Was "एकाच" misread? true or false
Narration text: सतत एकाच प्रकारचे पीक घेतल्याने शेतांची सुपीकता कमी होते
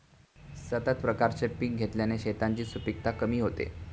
true